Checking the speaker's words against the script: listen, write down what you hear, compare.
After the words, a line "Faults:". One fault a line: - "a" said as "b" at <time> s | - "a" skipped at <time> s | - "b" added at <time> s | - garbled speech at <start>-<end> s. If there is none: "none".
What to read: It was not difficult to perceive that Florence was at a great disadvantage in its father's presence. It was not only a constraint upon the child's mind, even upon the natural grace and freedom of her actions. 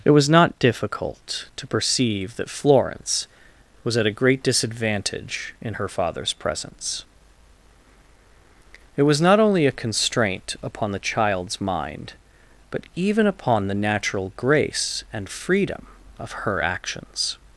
It was not difficult to perceive that Florence was at a great disadvantage in her father's presence. It was not only a constraint upon the child's mind, but even upon the natural grace and freedom of her actions.
Faults:
- "its" said as "her" at 5.7 s
- "but" added at 12.7 s